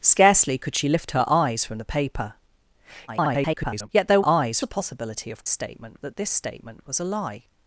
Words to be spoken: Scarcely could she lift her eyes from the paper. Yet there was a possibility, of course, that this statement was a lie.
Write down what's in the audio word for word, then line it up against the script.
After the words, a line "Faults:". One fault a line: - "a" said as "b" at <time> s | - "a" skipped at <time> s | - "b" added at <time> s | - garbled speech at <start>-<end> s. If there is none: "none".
Scarcely could she lift her eyes from the paper. [garbled] Yet there eyes a possibility, of statement, that this statement was a lie.
Faults:
- garbled speech at 3.1-3.9 s
- "was" said as "eyes" at 4.2 s
- "course" said as "statement" at 5.5 s